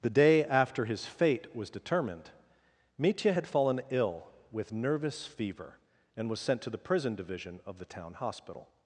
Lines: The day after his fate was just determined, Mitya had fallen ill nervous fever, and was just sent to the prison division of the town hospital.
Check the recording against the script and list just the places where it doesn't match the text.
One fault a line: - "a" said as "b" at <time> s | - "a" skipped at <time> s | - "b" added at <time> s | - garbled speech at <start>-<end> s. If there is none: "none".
- "just" skipped at 1.7 s
- "with" added at 4.5 s
- "just" skipped at 6.4 s